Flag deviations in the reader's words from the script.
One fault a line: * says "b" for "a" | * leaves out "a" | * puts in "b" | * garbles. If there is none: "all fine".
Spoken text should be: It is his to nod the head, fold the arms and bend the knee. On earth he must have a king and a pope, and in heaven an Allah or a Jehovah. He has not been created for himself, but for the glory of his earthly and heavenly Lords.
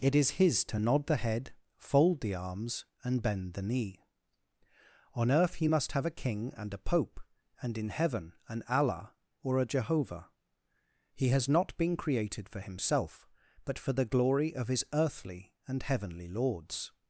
all fine